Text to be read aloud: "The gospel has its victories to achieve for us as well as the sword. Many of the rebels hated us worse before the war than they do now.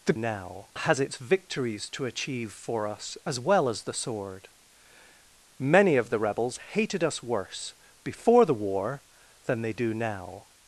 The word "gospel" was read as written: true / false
false